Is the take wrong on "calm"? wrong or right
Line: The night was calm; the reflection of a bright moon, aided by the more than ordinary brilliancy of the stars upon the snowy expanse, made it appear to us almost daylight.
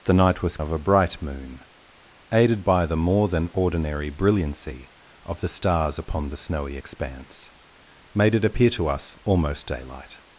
wrong